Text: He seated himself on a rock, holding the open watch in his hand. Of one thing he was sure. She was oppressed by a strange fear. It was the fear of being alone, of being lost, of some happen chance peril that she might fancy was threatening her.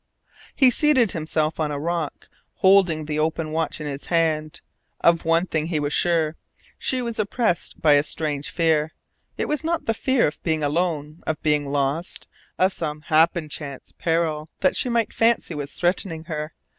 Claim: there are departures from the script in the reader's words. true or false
true